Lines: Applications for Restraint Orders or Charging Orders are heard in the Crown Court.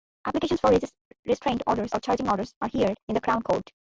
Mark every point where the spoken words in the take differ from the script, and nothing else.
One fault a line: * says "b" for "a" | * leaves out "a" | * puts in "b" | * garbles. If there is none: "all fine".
all fine